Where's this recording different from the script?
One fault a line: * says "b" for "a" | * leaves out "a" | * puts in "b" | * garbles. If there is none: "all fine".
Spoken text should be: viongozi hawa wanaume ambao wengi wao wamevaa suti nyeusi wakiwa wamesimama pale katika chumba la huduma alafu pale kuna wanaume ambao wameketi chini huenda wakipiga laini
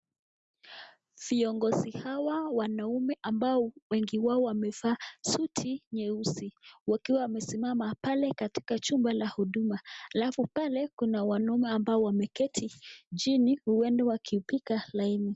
all fine